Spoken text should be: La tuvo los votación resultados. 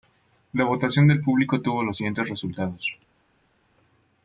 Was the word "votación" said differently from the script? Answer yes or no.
yes